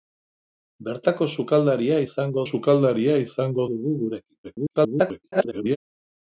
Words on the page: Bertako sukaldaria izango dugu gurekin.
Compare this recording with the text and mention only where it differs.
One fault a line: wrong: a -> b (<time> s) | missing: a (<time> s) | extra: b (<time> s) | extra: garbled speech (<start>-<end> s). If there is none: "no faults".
extra: sukaldaria izango (2.5 s)
extra: garbled speech (4.4-5.8 s)